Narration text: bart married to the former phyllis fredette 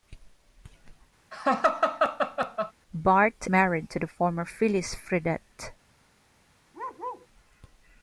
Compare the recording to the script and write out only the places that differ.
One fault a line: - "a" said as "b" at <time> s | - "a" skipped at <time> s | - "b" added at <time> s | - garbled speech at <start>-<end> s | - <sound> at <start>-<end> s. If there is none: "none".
- laugh at 1.3-2.7 s
- bark at 6.7-7.3 s